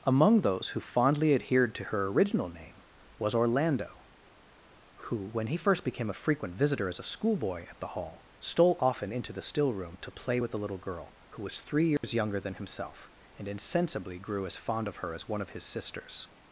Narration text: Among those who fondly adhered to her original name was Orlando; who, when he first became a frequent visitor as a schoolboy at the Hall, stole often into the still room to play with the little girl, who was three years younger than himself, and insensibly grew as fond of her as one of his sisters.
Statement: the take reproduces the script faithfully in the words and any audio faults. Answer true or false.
false